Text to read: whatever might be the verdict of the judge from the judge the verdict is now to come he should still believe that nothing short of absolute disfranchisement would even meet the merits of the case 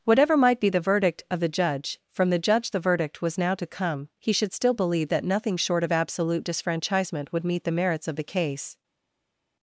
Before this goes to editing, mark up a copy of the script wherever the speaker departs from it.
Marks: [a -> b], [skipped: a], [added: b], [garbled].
whatever might be the verdict of the judge from the judge the verdict [is -> was] now to come he should still believe that nothing short of absolute disfranchisement would [skipped: even] meet the merits of the case